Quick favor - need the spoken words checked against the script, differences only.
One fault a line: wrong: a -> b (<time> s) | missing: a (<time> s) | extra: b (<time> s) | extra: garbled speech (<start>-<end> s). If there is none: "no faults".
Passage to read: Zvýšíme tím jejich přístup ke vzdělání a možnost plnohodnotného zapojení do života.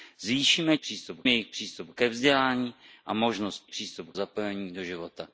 wrong: tím -> přístup (0.8 s)
wrong: plnohodnotného -> přístup (3.7 s)